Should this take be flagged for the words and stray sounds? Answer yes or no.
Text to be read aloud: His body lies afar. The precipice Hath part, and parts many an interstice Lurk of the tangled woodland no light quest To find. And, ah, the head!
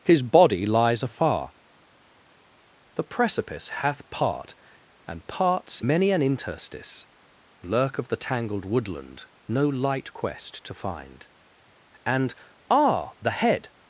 no